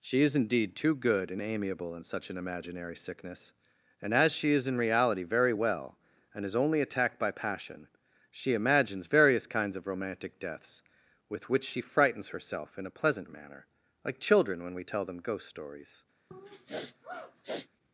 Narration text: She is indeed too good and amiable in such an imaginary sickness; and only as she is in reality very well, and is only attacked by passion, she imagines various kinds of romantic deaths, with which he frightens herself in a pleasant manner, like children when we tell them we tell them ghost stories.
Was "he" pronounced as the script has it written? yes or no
no